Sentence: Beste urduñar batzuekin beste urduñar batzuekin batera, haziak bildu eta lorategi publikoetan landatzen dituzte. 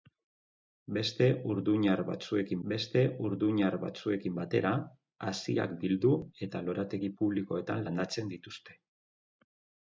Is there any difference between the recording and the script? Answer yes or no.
no